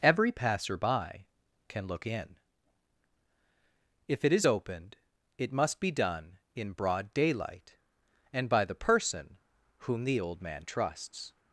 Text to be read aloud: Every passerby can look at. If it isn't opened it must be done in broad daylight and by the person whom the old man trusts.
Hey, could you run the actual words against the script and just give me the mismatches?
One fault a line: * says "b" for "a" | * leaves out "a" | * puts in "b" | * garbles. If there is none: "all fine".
* says "in" for "at"
* says "is" for "isn't"